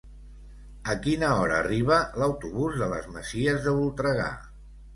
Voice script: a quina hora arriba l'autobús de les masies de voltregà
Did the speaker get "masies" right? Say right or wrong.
right